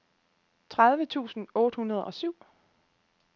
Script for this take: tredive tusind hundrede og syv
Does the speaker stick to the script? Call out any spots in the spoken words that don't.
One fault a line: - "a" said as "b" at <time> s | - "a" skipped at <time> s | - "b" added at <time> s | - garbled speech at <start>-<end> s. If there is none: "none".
- "otte" added at 1.6 s